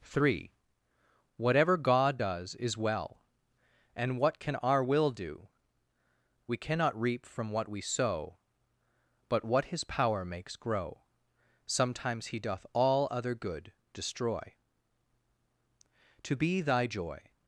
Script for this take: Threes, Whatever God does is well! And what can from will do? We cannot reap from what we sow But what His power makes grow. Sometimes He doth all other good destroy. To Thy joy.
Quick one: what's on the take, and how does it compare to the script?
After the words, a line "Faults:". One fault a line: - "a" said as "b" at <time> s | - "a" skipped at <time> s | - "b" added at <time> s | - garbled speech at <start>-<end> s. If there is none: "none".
Three, Whatever God does is well! And what can our will do? We cannot reap from what we sow But what His power makes grow. Sometimes He doth all other good destroy. To be Thy joy.
Faults:
- "Threes" said as "Three" at 0.0 s
- "from" said as "our" at 4.6 s
- "be" added at 16.4 s